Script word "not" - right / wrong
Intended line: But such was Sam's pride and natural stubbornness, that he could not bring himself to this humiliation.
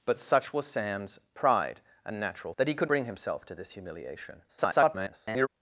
wrong